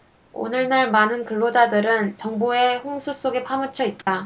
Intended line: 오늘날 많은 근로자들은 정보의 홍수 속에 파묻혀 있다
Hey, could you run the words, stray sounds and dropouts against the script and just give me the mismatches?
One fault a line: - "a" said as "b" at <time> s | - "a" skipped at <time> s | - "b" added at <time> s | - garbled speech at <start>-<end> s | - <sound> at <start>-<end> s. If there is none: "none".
- dropout at 4.0-4.1 s